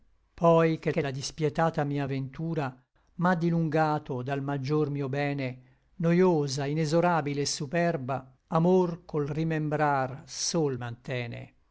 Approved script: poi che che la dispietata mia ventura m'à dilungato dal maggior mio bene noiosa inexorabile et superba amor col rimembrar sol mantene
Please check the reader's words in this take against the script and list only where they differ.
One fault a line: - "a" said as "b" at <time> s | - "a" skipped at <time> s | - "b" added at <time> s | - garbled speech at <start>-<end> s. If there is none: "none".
none